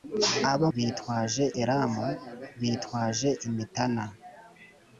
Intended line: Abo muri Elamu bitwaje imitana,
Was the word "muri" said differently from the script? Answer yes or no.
yes